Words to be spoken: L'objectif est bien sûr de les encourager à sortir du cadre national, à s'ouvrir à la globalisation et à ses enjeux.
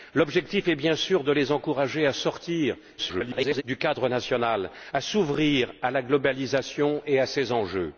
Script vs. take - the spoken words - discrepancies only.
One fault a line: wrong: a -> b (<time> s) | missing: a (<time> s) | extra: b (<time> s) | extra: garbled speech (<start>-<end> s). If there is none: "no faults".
extra: garbled speech (3.0-3.6 s)